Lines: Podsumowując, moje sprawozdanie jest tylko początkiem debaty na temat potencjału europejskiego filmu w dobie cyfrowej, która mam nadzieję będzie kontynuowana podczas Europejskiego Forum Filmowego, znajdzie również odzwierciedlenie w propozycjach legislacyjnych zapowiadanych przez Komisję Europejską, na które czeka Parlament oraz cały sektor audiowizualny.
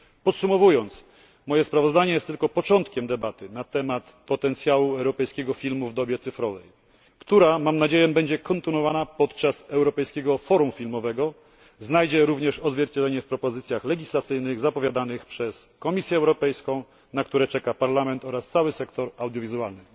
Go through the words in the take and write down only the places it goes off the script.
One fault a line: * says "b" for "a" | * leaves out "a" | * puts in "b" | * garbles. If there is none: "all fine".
all fine